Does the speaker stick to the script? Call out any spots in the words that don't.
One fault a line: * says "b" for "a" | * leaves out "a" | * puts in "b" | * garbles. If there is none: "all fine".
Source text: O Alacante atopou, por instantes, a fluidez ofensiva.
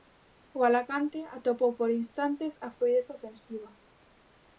all fine